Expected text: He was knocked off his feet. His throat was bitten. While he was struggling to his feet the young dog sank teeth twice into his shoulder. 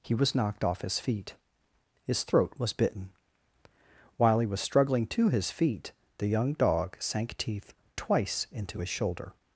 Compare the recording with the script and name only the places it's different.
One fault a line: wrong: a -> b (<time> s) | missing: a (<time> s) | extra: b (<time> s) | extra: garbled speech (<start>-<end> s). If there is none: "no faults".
no faults